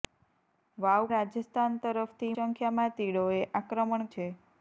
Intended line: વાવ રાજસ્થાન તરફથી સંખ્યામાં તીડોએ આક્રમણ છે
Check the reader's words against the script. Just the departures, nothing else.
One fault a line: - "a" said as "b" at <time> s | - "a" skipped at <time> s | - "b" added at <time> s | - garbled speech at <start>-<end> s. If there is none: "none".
none